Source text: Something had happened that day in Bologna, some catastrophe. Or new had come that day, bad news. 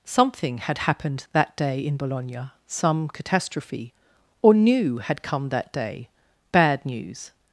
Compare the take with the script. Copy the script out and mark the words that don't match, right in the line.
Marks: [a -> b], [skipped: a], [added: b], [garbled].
Something had happened that day in Bologna, some catastrophe. Or new had come that day, bad news.